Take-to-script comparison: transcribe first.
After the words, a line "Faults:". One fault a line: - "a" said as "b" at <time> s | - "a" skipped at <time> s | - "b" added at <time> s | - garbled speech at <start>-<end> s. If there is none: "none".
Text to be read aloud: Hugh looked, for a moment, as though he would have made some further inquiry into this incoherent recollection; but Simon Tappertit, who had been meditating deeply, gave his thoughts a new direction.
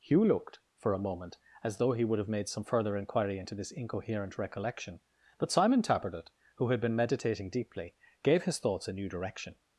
Hugh looked, for a moment, as though he would have made some further inquiry into this incoherent recollection; but Simon Tappertit, who had been meditating deeply, gave his thoughts a new direction.
Faults:
none